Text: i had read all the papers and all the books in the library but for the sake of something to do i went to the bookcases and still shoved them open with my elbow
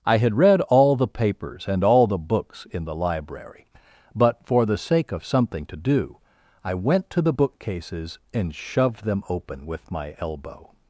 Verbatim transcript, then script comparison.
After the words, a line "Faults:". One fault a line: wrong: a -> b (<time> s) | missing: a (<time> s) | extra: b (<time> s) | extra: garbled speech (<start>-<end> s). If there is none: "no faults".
i had read all the papers and all the books in the library but for the sake of something to do i went to the bookcases and shoved them open with my elbow
Faults:
missing: still (8.5 s)